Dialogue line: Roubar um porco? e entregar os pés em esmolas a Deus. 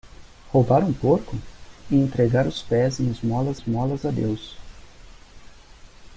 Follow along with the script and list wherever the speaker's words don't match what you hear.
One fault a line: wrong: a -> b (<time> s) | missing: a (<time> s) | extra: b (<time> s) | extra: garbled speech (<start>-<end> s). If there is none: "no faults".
extra: esmolas (3.5 s)